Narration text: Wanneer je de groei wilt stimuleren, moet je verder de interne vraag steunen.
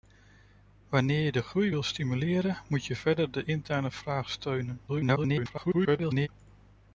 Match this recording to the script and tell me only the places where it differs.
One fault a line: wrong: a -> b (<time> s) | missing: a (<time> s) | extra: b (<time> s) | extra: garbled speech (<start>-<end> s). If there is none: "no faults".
extra: garbled speech (4.9-6.3 s)